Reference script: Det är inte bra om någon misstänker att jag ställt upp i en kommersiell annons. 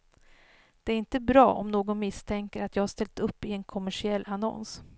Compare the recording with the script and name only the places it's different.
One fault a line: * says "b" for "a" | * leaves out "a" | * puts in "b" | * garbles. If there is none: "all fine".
all fine